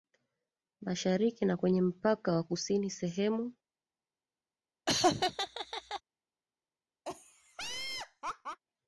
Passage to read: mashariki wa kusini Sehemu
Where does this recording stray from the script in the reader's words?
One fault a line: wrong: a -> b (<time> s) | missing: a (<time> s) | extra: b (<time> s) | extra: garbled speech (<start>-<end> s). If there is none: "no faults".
extra: na kwenye mpaka (1.4 s)